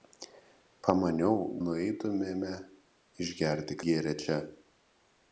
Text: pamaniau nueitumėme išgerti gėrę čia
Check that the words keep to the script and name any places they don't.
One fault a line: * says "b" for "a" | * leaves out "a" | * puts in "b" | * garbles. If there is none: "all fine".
all fine